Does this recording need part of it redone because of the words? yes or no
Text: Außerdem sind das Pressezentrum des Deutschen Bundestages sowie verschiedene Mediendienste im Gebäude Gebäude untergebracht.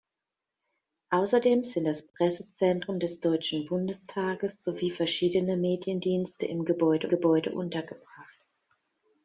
no